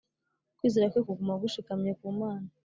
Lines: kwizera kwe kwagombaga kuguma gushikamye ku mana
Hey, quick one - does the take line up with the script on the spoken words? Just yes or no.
no